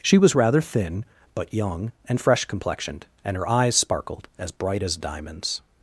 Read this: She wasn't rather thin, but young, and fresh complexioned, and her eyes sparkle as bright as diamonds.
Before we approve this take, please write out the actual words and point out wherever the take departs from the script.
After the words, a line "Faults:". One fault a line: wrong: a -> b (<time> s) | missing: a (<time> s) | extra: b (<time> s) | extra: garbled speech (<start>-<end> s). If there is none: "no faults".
She was rather thin, but young, and fresh complexioned, and her eyes sparkled as bright as diamonds.
Faults:
wrong: wasn't -> was (0.2 s)
wrong: sparkle -> sparkled (3.7 s)